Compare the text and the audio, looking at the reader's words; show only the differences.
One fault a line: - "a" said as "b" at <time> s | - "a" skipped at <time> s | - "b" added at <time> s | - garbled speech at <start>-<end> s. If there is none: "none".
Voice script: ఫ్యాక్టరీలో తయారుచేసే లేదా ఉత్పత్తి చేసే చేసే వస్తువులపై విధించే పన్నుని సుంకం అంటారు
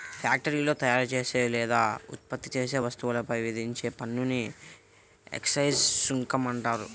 - "చేసే" skipped at 2.8 s
- "ఎక్సైజ్" added at 5.3 s